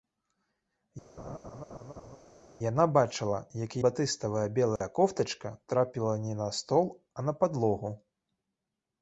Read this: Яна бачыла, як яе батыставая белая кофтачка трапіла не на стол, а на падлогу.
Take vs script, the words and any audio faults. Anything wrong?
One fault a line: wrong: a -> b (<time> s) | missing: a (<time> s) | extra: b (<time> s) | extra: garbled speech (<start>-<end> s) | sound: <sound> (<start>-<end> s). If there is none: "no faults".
sound: laugh (1.2-2.2 s)
missing: яе (3.8 s)
sound: dropout (4.8-4.8 s)